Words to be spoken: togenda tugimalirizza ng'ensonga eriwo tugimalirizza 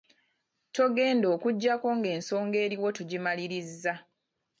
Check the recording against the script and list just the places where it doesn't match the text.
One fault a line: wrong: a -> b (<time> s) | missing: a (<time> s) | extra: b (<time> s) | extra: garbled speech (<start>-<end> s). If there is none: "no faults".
wrong: tugimalirizza -> okuggyako (1.4 s)